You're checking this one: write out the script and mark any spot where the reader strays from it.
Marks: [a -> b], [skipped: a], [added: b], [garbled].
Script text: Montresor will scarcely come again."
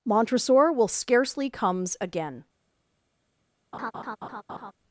Montresor will scarcely [come -> comes] again."